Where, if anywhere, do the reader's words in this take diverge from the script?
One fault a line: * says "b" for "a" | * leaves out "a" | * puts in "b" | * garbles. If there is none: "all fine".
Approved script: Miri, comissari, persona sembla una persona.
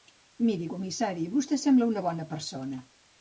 * says "vostè" for "persona"
* puts in "bona"